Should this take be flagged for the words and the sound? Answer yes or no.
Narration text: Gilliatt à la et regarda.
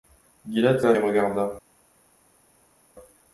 no